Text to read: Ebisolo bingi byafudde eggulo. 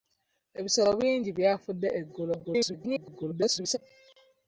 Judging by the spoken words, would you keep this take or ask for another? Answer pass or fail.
fail